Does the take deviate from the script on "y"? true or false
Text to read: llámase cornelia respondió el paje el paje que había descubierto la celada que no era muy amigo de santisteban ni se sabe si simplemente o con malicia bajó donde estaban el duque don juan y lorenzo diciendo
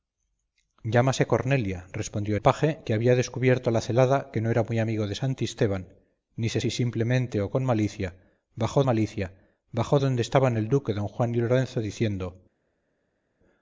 false